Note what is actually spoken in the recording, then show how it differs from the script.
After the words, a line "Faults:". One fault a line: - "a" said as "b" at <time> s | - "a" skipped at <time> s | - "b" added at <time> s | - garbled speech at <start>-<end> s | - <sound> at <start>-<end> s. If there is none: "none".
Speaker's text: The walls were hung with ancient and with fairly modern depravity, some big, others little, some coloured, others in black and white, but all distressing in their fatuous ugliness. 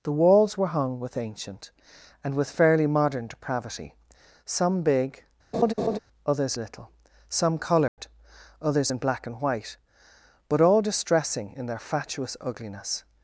The walls were hung with ancient and with fairly modern depravity, some big, others little, some coloured, others in black and white, but all distressing in their fatuous ugliness.
Faults:
- laugh at 5.5-6.0 s
- dropout at 7.9-8.0 s